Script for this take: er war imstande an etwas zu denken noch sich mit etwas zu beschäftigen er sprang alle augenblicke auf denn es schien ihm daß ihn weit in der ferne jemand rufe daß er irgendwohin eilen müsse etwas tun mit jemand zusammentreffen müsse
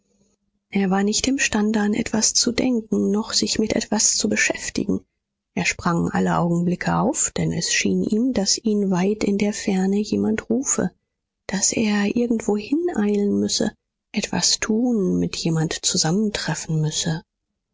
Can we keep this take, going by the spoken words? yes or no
no